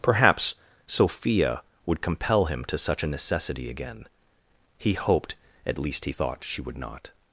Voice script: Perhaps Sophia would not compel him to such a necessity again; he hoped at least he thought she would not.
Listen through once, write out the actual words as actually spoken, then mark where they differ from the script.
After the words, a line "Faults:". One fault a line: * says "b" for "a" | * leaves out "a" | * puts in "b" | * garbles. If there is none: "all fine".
Perhaps Sophia would compel him to such a necessity again; he hoped at least he thought she would not.
Faults:
* leaves out "not"